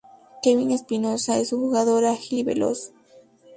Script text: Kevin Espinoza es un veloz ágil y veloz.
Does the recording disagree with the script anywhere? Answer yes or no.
yes